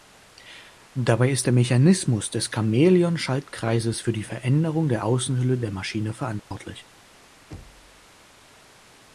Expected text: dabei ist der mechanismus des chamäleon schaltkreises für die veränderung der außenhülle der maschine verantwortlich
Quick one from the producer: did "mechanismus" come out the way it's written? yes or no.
yes